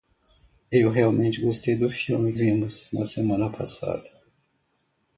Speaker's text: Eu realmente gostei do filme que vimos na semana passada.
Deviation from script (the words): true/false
true